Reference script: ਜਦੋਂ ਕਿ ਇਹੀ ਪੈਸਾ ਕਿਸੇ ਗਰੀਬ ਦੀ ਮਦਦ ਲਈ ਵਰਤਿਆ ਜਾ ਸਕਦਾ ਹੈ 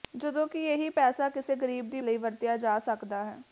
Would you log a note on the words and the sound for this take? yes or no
yes